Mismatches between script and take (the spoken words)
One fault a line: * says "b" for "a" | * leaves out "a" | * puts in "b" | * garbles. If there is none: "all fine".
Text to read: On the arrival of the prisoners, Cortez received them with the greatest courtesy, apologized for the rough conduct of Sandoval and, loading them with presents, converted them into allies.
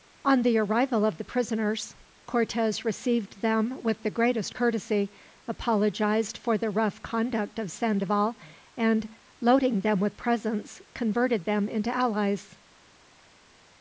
all fine